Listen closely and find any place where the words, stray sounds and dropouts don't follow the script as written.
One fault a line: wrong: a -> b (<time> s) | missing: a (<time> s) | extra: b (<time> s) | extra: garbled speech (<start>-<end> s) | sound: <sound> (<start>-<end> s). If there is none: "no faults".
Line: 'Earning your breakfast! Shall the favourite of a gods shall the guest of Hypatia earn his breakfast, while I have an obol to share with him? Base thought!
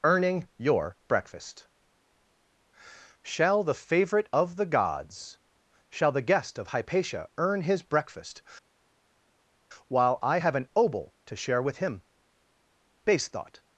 wrong: a -> the (4.5 s)